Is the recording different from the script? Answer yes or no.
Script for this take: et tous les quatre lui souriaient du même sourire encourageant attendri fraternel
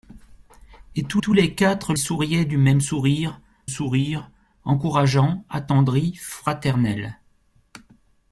yes